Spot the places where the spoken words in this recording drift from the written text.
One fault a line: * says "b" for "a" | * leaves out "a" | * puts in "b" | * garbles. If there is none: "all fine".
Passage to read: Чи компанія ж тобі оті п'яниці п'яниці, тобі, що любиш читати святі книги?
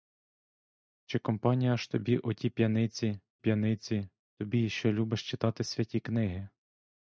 all fine